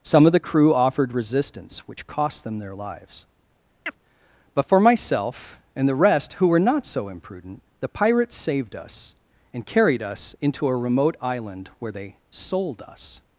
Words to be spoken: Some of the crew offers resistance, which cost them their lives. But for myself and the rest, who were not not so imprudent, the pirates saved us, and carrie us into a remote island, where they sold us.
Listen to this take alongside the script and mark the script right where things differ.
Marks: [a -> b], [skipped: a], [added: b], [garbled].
Some of the crew [offers -> offered] resistance, which cost them their lives. But for myself and the rest, who were not [skipped: not] so imprudent, the pirates saved us, and [carrie -> carried] us into a remote island, where they sold us.